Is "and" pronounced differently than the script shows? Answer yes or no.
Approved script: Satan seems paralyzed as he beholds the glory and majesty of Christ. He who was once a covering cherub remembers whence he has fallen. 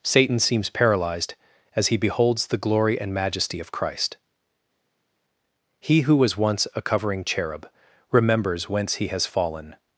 no